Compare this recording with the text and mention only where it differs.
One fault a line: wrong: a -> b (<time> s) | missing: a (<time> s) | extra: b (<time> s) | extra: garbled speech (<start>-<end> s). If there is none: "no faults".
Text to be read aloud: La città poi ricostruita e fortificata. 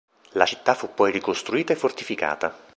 extra: fu (0.7 s)